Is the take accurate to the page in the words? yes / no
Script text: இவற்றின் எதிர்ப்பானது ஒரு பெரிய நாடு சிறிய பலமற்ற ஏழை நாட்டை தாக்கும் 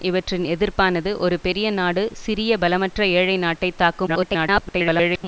no